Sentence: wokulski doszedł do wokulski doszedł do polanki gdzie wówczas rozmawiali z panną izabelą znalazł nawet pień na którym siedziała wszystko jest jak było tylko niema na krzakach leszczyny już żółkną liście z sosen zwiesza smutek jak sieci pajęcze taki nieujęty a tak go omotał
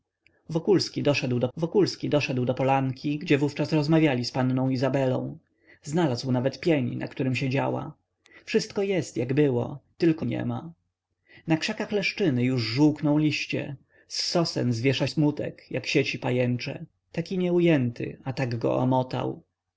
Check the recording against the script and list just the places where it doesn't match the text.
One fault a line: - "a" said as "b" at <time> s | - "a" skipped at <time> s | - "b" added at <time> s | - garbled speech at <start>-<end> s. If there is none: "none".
none